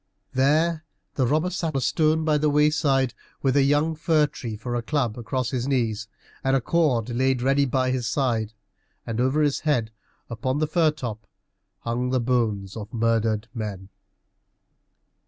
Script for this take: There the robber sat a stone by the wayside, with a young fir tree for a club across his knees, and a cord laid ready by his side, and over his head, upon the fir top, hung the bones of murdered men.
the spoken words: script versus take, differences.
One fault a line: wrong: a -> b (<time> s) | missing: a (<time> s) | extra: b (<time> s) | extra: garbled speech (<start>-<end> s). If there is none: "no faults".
no faults